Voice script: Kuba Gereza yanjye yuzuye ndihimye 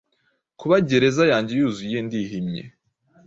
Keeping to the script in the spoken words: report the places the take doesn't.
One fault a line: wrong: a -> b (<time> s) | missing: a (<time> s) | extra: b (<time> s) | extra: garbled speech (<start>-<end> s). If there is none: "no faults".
no faults